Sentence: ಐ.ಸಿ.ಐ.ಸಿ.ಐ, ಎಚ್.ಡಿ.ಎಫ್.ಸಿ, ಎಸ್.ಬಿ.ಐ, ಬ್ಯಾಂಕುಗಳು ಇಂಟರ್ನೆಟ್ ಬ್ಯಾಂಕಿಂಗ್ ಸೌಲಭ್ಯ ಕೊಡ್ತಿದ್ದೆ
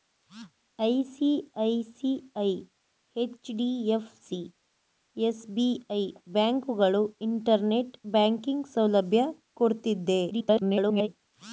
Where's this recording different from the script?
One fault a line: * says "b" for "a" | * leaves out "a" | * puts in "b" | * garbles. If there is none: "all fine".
* garbles